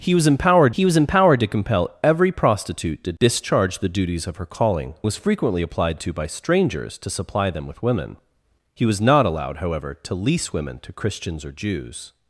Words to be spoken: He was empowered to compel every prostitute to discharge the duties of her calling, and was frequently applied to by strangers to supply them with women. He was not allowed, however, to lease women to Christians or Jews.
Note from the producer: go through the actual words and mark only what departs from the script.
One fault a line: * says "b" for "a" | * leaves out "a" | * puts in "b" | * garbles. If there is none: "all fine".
* puts in "he was empowered"
* leaves out "and"